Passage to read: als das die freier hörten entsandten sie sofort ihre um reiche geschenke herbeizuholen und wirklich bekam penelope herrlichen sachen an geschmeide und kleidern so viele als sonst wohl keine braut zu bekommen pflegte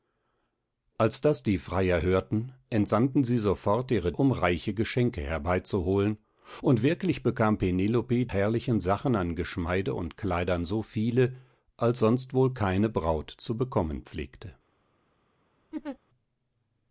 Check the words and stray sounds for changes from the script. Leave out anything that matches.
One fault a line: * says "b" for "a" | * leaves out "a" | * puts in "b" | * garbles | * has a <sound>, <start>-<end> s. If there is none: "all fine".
* has a laugh, 15.7-16.0 s